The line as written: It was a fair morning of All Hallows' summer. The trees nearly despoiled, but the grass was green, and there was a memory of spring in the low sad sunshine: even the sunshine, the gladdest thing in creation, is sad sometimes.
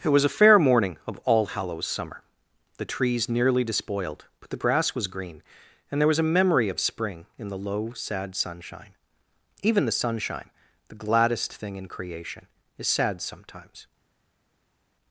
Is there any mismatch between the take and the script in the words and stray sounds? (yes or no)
no